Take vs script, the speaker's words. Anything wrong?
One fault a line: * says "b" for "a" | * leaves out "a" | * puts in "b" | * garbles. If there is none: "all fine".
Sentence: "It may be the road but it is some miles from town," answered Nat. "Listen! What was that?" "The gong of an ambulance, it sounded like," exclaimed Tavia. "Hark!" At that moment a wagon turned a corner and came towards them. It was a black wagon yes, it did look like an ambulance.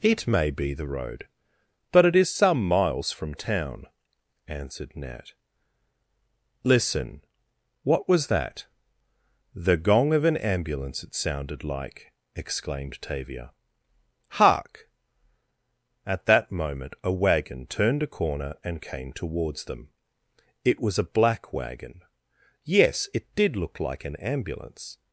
all fine